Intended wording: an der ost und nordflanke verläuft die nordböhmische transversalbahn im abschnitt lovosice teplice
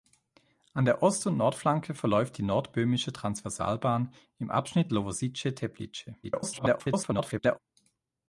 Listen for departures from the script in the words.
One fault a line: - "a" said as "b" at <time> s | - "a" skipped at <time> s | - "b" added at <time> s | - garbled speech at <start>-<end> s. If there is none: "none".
- garbled speech at 6.2-7.6 s